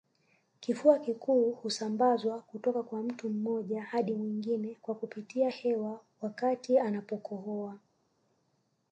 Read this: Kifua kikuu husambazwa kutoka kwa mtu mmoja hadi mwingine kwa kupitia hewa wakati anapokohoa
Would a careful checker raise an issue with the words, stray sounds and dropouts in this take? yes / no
no